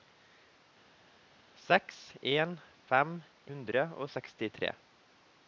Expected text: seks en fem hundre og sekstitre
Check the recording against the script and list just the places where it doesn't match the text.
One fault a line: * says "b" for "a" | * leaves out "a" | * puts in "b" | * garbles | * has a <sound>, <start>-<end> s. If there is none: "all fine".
all fine